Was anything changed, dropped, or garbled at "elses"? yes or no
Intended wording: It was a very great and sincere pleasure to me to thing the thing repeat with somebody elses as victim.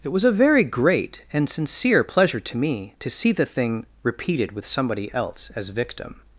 yes